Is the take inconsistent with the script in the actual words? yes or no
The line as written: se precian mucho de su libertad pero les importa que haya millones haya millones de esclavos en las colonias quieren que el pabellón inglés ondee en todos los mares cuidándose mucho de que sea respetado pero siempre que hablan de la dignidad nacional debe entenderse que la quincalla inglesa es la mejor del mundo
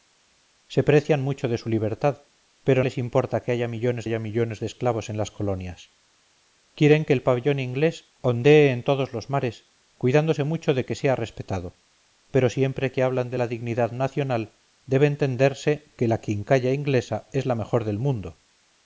no